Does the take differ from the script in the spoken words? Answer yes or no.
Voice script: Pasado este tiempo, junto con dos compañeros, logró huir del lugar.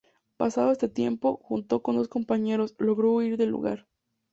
no